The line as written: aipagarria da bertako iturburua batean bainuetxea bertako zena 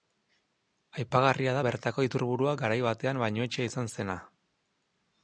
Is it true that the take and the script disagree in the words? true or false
true